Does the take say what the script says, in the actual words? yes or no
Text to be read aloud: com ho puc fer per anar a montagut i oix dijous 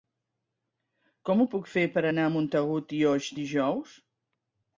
yes